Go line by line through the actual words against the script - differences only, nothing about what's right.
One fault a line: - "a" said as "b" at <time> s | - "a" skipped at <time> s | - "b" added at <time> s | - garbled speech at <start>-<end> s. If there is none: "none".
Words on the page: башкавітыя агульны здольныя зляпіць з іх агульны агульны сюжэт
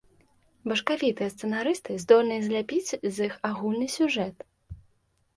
- "агульны" said as "сцэнарысты" at 1.3 s
- "агульны" skipped at 3.9 s